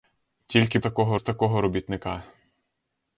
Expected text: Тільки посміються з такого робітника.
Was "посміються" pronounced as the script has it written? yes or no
no